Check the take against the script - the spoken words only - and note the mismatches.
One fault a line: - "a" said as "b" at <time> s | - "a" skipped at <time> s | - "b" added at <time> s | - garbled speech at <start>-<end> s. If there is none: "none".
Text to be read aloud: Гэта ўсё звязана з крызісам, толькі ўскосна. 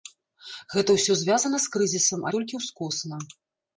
none